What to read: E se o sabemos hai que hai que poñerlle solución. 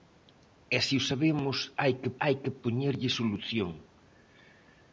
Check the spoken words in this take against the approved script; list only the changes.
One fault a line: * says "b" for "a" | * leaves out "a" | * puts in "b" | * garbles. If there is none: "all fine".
all fine